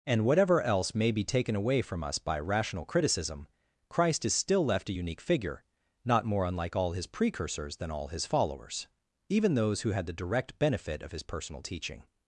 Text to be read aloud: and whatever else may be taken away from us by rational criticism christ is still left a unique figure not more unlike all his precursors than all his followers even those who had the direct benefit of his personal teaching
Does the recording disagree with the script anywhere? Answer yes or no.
no